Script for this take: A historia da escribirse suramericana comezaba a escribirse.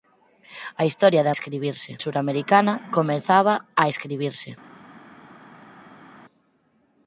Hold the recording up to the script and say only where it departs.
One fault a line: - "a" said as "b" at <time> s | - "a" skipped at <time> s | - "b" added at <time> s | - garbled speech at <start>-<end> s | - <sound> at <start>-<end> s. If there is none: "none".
none